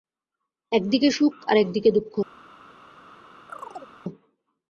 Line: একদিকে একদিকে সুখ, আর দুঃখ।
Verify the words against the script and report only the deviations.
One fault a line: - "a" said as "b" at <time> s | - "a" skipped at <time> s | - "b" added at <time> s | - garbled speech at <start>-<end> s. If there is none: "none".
- "একদিকে" skipped at 1.1 s
- "একদিকে" added at 1.6 s